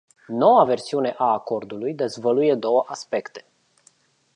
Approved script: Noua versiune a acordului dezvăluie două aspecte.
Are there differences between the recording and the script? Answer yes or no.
no